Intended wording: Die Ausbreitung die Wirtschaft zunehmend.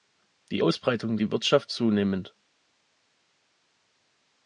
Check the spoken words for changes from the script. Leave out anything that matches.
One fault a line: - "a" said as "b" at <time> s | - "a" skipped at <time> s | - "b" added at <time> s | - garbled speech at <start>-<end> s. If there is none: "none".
none